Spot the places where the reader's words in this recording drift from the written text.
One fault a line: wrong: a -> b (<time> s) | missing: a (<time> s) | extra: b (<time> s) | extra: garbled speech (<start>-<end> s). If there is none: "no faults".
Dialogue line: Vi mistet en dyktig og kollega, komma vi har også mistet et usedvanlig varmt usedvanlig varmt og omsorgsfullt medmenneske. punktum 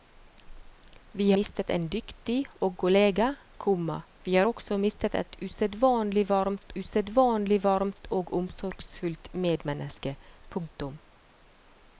no faults